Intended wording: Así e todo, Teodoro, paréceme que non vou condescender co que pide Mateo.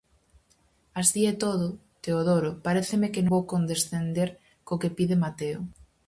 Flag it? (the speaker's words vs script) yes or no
yes